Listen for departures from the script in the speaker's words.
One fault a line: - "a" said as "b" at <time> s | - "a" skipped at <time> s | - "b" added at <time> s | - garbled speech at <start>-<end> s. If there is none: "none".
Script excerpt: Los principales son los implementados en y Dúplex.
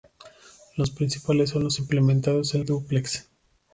none